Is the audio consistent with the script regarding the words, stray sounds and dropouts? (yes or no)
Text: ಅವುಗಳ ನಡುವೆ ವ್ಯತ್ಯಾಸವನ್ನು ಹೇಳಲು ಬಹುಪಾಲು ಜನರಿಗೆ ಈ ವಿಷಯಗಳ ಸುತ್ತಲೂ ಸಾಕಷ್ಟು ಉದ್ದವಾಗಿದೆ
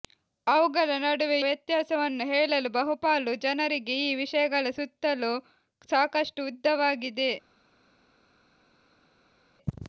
yes